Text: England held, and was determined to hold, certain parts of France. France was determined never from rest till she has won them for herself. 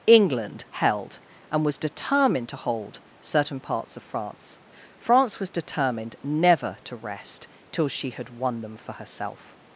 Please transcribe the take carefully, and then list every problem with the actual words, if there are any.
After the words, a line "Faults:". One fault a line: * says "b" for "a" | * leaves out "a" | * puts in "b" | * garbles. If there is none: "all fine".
England held, and was determined to hold, certain parts of France. France was determined never to rest till she had won them for herself.
Faults:
* says "to" for "from"
* says "had" for "has"